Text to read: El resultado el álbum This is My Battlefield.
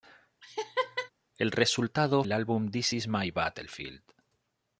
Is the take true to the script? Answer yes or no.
yes